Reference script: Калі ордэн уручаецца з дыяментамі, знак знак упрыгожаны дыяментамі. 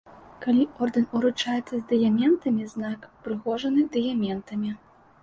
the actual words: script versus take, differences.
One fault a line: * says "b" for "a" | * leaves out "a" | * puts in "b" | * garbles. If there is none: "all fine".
* leaves out "знак"